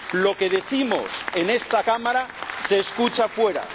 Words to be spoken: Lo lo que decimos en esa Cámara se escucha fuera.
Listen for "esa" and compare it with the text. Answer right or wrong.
wrong